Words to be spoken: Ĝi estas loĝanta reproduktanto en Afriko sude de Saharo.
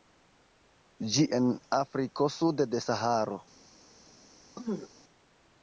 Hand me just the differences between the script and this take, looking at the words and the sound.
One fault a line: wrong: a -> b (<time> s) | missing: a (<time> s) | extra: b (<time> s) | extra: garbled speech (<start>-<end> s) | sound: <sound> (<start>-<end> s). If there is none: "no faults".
missing: estas loĝanta reproduktanto (1.2 s)
sound: throat clearing (4.6-4.9 s)